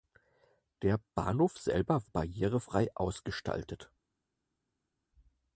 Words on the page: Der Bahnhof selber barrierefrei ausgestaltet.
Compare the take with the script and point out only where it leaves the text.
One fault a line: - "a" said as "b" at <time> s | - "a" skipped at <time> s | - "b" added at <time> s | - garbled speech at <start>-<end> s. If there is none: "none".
none